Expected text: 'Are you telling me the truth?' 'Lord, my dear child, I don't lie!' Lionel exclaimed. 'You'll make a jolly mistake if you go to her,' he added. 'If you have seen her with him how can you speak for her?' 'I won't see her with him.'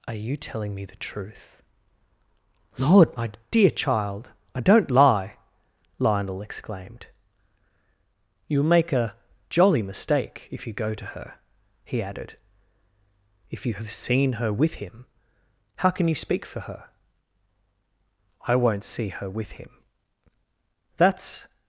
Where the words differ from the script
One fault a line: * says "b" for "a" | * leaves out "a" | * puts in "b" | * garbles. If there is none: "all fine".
* puts in "That's"